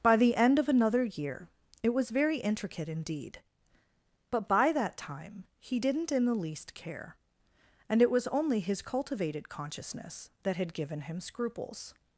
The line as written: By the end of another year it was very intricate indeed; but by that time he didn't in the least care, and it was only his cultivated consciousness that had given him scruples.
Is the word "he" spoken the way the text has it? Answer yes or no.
yes